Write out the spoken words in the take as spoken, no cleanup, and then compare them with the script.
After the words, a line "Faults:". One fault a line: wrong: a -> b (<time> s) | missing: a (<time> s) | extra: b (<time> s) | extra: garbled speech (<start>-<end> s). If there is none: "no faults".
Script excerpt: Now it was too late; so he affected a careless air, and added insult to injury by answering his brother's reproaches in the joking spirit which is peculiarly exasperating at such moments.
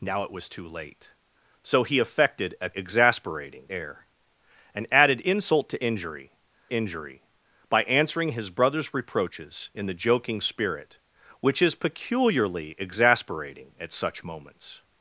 Now it was too late; so he affected a exasperating air, and added insult to injury injury by answering his brother's reproaches in the joking spirit which is peculiarly exasperating at such moments.
Faults:
wrong: careless -> exasperating (2.7 s)
extra: injury (6.7 s)